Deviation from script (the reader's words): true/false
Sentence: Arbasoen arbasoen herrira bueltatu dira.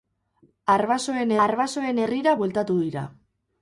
false